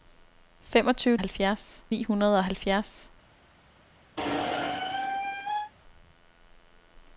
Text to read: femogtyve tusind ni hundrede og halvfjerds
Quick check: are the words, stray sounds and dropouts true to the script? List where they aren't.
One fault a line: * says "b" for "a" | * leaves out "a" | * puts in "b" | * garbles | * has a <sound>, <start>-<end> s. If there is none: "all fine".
* says "halvfjerds" for "tusind"
* has a squeak, 4.2-5.7 s